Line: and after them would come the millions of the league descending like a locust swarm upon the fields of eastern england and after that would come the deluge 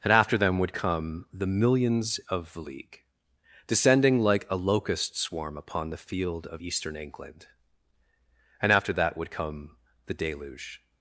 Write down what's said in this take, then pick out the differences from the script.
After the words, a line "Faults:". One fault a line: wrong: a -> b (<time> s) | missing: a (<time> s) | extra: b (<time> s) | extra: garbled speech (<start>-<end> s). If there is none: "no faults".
and after them would come the millions of the league descending like a locust swarm upon the field of eastern england and after that would come the deluge
Faults:
wrong: fields -> field (6.0 s)